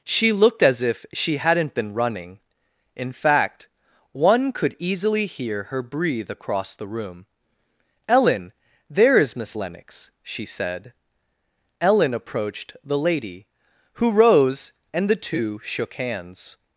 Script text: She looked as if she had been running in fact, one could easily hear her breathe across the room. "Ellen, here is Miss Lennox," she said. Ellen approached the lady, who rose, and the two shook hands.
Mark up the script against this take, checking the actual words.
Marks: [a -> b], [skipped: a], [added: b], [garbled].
She looked as if she [had -> hadn't] been running in fact, one could easily hear her breathe across the room. "Ellen, [here -> there] is Miss Lennox," she said. Ellen approached the lady, who rose, and the two shook hands.